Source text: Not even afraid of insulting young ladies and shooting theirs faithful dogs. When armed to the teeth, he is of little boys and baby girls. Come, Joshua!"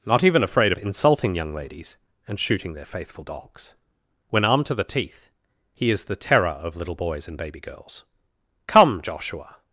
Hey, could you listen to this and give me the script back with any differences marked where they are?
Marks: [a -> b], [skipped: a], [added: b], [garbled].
Not even afraid of insulting young ladies and shooting [theirs -> their] faithful dogs. When armed to the teeth, he is [added: the terror] of little boys and baby girls. Come, Joshua!"